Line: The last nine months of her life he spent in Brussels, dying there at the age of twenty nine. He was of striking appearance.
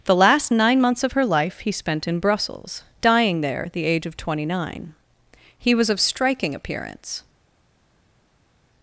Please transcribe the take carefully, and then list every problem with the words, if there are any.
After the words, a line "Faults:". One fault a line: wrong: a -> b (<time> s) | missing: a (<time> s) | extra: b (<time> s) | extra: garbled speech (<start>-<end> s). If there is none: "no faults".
The last nine months of her life he spent in Brussels, dying there at the age of twenty nine. He was of striking appearance.
Faults:
no faults